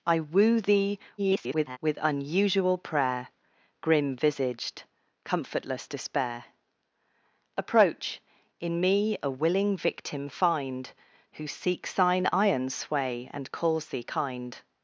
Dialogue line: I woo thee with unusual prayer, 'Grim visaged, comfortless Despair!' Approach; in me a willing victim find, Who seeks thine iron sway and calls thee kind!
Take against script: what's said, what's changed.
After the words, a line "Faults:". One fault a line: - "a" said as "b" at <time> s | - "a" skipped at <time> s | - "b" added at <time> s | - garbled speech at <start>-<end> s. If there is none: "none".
I woo thee [garbled] with unusual prayer, 'Grim visaged, comfortless Despair!' Approach; in me a willing victim find, Who seeks thine iron sway and calls thee kind!
Faults:
- garbled speech at 1.2-1.8 s